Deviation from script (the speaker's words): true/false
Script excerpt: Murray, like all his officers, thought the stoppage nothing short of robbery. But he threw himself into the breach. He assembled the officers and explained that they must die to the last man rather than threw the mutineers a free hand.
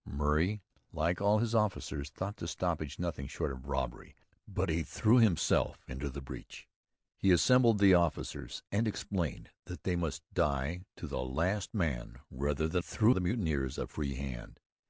false